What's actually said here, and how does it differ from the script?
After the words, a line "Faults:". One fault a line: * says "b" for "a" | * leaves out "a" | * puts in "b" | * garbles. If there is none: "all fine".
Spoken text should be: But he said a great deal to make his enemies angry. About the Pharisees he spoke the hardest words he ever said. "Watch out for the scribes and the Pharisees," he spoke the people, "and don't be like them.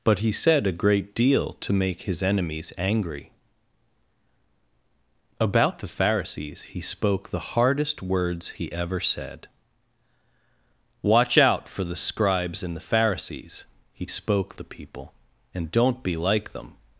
But he said a great deal to make his enemies angry. About the Pharisees he spoke the hardest words he ever said. "Watch out for the scribes and the Pharisees," he spoke the people, "and don't be like them.
Faults:
all fine